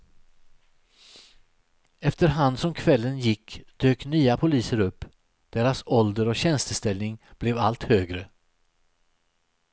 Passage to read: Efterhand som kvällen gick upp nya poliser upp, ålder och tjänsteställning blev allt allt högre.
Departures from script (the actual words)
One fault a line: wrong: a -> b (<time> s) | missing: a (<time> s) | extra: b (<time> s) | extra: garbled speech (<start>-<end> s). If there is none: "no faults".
wrong: upp -> dök (3.8 s)
extra: deras (5.5 s)
missing: allt (7.8 s)